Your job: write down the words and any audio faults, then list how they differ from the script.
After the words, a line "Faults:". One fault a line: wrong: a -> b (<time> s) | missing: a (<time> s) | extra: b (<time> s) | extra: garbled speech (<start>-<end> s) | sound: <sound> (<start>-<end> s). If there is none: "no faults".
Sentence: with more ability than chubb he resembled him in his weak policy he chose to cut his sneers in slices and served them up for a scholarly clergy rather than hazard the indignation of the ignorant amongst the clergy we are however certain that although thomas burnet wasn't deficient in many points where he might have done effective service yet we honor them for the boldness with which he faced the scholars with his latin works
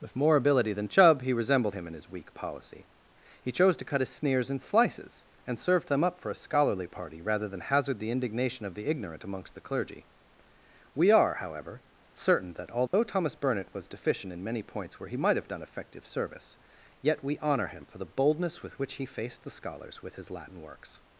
with more ability than chubb he resembled him in his weak policy he chose to cut his sneers in slices and served them up for a scholarly party rather than hazard the indignation of the ignorant amongst the clergy we are however certain that although thomas burnet was deficient in many points where he might have done effective service yet we honor him for the boldness with which he faced the scholars with his latin works
Faults:
wrong: clergy -> party (6.9 s)
sound: dropout (12.9-12.9 s)
wrong: wasn't -> was (13.7 s)
wrong: them -> him (17.7 s)